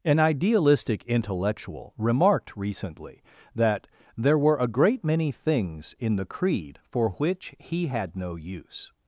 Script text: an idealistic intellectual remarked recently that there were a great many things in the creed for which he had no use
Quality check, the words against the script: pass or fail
pass